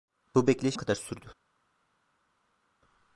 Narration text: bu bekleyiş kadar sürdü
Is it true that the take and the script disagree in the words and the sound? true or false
false